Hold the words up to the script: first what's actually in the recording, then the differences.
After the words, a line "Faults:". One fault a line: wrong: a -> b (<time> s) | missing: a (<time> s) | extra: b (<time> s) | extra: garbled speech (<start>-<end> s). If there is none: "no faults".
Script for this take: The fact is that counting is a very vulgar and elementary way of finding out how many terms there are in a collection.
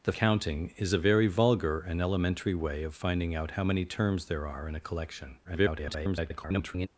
The counting is a very vulgar and elementary way of finding out how many terms there are in a collection. [garbled]
Faults:
missing: fact is that (0.1 s)
extra: garbled speech (5.4-6.9 s)